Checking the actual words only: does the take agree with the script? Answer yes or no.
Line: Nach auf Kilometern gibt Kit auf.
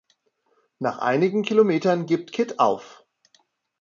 no